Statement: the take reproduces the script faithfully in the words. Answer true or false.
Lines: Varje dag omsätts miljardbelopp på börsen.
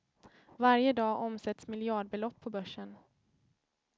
true